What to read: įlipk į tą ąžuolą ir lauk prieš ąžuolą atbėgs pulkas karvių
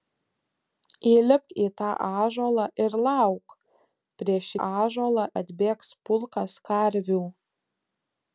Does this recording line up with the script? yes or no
yes